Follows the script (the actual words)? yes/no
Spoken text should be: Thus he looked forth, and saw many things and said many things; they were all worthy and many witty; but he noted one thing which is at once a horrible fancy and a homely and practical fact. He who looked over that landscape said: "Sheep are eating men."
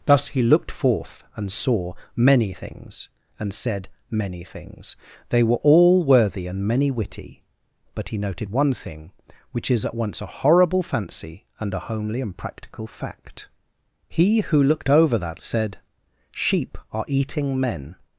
no